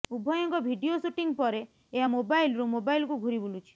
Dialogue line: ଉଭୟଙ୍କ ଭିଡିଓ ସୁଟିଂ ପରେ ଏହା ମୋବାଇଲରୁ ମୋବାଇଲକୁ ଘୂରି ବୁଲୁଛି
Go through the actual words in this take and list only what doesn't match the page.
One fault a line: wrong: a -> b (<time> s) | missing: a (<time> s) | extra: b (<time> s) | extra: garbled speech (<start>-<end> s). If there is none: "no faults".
no faults